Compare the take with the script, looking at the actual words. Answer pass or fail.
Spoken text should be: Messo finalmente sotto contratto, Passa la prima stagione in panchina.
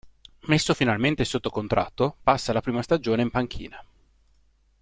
pass